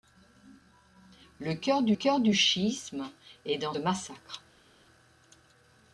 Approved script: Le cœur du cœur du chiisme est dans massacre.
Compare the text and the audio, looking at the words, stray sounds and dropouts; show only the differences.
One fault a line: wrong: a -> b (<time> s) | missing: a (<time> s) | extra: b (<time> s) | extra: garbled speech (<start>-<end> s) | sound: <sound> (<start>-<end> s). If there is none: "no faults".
no faults